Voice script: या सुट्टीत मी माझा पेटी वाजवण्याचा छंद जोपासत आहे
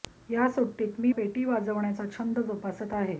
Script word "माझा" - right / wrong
wrong